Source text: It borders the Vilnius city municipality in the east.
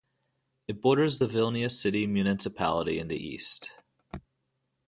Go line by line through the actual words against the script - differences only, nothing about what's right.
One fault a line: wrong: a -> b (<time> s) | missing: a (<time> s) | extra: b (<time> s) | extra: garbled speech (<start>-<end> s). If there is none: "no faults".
no faults